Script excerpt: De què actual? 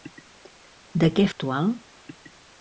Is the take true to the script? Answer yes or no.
yes